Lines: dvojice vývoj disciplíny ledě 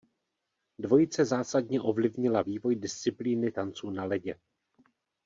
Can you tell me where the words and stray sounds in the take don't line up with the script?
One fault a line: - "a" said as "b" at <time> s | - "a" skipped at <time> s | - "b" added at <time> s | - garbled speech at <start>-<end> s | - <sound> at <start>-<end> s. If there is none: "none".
- "zásadně ovlivnila" added at 1.2 s
- "tanců na" added at 3.5 s